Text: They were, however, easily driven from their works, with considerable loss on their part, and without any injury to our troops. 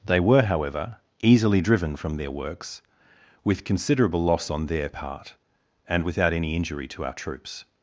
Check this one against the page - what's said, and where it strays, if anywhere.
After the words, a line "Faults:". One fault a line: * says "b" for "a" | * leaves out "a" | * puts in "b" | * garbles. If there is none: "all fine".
They were, however, easily driven from their works, with considerable loss on their part, and without any injury to our troops.
Faults:
all fine